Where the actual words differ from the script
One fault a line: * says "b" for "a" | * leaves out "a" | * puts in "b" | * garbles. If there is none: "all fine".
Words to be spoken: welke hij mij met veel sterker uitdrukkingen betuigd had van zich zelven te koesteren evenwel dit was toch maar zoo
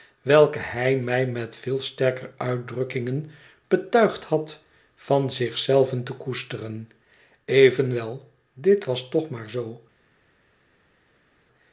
all fine